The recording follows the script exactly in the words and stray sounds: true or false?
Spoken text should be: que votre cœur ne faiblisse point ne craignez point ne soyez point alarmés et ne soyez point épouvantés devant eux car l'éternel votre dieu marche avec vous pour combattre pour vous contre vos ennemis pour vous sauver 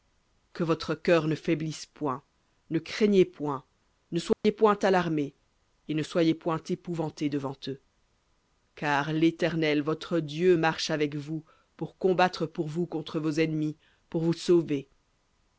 false